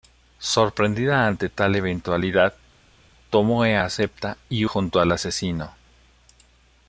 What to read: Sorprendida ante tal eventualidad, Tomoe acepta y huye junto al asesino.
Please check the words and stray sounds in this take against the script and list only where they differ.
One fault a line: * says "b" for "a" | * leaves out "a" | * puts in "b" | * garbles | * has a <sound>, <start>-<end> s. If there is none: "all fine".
* leaves out "huye"